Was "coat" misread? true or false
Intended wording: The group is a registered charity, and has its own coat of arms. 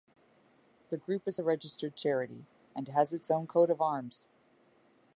false